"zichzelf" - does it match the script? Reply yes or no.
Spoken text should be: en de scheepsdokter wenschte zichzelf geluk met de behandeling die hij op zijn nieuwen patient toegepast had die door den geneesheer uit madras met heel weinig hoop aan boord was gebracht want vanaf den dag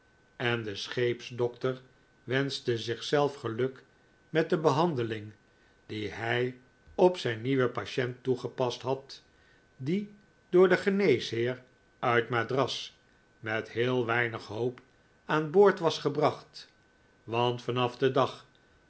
yes